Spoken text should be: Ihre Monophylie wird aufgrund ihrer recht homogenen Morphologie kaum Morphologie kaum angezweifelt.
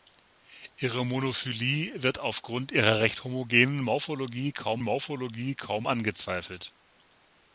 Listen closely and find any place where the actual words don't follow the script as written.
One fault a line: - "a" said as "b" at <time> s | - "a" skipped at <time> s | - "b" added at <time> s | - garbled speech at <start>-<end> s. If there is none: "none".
none